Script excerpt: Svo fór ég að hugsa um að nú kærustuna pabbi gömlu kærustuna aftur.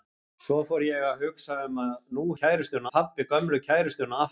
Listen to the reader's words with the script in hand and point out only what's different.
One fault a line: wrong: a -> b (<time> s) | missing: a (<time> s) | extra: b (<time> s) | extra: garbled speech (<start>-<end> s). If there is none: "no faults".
no faults